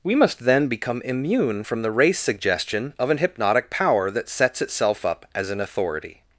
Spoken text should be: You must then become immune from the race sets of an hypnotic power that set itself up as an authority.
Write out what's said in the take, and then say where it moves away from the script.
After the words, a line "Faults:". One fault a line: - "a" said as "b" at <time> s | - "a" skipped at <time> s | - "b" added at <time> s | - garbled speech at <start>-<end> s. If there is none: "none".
We must then become immune from the race suggestion of an hypnotic power that sets itself up as an authority.
Faults:
- "You" said as "We" at 0.0 s
- "sets" said as "suggestion" at 2.2 s
- "set" said as "sets" at 4.3 s